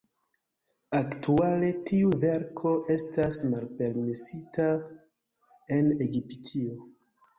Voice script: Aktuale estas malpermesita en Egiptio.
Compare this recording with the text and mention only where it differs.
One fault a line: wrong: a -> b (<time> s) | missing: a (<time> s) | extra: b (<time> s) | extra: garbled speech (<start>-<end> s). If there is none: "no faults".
extra: tiu verko (1.9 s)